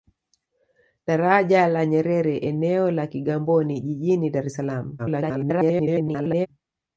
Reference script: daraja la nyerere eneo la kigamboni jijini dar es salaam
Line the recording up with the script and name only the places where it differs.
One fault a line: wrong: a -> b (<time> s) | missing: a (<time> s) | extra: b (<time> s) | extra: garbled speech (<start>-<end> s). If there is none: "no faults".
extra: garbled speech (5.0-6.5 s)